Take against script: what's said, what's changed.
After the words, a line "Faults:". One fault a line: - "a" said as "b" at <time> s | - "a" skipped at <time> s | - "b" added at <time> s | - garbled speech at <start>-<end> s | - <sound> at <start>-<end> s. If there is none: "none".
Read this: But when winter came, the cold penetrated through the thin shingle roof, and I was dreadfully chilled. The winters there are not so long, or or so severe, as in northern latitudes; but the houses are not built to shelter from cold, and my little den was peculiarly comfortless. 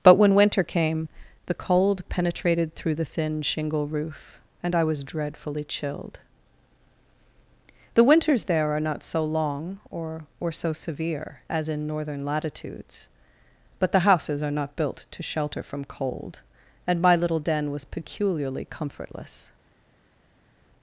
But when winter came, the cold penetrated through the thin shingle roof, and I was dreadfully chilled. The winters there are not so long, or or so severe, as in northern latitudes; but the houses are not built to shelter from cold, and my little den was peculiarly comfortless.
Faults:
none